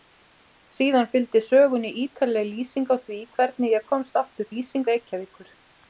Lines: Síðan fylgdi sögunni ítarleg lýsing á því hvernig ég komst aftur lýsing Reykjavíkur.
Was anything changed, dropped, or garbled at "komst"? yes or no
no